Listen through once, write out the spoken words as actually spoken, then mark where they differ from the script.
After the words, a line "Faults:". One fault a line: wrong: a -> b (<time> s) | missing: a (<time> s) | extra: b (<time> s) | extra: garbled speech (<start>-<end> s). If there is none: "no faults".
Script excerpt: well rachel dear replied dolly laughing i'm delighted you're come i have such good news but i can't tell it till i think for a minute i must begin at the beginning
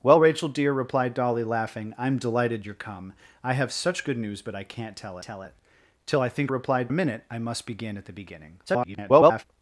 well rachel dear replied dolly laughing i'm delighted you're come i have such good news but i can't tell tell it till i think replied a minute i must begin at the beginning [garbled]
Faults:
extra: tell (5.2 s)
wrong: for -> replied (6.5 s)
extra: garbled speech (8.7-9.4 s)